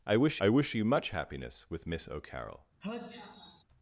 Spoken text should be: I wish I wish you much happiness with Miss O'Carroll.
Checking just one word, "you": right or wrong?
right